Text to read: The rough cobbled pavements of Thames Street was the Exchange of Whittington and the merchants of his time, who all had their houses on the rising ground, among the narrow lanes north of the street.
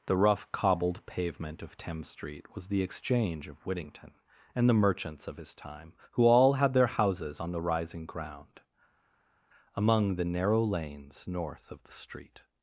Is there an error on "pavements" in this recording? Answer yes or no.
yes